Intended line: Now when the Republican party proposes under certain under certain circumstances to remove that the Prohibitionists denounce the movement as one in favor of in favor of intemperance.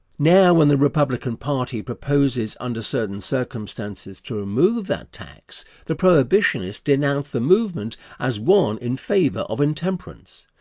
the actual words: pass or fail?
fail